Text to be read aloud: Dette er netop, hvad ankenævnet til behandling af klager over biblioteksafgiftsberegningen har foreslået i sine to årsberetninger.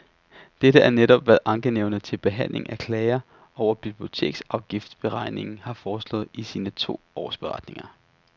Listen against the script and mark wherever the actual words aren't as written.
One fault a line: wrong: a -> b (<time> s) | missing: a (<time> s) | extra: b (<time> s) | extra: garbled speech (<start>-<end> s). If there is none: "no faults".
no faults